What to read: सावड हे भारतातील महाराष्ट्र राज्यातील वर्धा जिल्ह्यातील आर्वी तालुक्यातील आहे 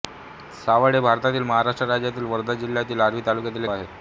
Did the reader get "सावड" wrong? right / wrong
right